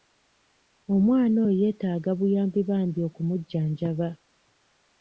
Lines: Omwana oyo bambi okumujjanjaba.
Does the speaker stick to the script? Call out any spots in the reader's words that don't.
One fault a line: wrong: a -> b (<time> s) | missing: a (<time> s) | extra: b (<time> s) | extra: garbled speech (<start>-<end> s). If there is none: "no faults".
extra: yeetaaga buyambi (1.6 s)